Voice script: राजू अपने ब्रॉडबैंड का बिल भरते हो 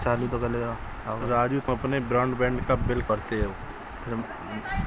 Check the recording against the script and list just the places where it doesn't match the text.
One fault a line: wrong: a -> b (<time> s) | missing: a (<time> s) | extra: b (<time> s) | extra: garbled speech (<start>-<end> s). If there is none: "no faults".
no faults